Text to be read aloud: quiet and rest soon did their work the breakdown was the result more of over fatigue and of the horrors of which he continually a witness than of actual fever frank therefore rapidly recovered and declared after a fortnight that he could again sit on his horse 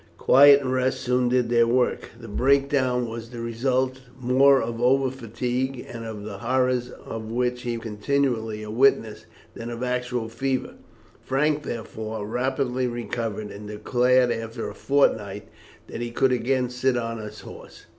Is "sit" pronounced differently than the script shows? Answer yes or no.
no